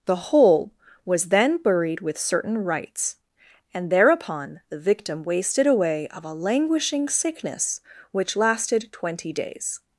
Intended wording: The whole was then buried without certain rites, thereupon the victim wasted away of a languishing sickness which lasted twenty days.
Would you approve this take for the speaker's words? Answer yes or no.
no